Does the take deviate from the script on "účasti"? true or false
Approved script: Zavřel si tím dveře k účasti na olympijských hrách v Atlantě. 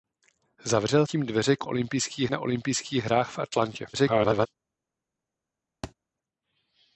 true